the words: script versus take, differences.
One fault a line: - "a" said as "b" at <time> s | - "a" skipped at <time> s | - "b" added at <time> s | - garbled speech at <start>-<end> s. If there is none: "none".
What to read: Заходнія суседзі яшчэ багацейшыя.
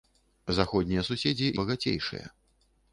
- "яшчэ" skipped at 1.5 s